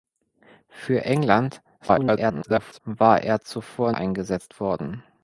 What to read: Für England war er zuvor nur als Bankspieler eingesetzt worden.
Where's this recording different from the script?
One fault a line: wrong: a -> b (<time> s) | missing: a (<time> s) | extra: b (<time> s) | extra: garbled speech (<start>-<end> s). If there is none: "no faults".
extra: garbled speech (1.8-2.8 s)
missing: nur als Bankspieler (3.9 s)